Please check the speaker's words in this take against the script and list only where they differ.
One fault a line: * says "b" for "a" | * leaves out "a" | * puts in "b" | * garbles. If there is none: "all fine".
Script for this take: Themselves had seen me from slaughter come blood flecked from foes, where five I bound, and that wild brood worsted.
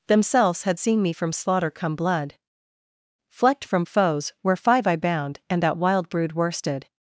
all fine